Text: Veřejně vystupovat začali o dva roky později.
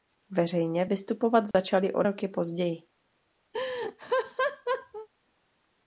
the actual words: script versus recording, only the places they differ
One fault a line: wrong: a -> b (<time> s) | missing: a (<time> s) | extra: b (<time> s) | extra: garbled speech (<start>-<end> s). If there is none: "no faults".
missing: dva (2.0 s)